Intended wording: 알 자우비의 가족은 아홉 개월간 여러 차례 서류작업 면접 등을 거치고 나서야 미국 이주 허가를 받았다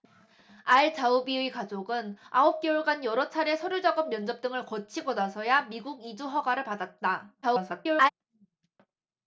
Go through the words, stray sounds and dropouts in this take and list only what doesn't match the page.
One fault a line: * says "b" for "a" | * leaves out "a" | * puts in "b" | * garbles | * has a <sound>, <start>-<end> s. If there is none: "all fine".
* garbles